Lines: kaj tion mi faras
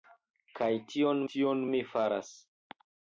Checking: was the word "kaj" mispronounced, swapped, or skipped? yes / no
no